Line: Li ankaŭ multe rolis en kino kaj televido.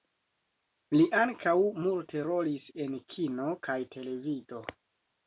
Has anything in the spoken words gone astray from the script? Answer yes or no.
no